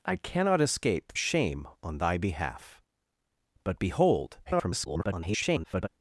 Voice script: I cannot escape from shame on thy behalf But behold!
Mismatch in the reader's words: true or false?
true